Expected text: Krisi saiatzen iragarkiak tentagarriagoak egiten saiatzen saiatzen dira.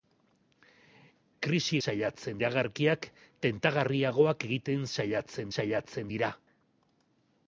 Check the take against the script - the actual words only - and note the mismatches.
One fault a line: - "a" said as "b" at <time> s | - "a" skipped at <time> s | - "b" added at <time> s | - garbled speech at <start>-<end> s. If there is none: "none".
none